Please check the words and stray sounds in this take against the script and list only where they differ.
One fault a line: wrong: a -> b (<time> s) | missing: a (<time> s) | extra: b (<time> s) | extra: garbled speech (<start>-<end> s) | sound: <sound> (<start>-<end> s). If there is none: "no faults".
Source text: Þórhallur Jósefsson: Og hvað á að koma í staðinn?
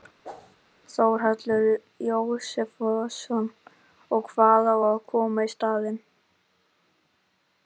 sound: whoosh (0.2-0.6 s)